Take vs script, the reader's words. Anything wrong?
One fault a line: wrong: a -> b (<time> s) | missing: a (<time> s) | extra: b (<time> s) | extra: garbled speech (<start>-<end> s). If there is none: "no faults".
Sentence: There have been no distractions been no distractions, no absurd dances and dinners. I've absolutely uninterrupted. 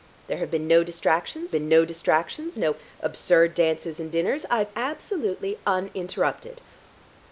no faults